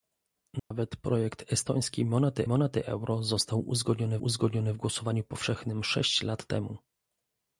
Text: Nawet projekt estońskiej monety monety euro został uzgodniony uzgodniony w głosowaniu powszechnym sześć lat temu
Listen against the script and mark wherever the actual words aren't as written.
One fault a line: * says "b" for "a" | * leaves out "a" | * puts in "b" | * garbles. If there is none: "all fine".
all fine